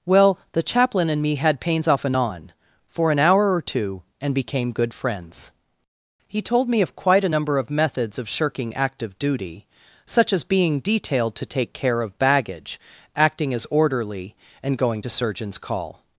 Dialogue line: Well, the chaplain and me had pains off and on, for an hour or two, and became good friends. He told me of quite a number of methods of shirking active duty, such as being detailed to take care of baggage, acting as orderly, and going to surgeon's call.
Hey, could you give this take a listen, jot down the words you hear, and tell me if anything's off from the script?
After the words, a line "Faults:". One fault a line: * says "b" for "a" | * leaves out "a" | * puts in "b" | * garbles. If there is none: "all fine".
Well, the chaplain and me had pains off and on, for an hour or two, and became good friends. He told me of quite a number of methods of shirking active duty, such as being detailed to take care of baggage, acting as orderly, and going to surgeon's call.
Faults:
all fine